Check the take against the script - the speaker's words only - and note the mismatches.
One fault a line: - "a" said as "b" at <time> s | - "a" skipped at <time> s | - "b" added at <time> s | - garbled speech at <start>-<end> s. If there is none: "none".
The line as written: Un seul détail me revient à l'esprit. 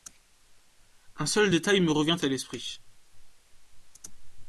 none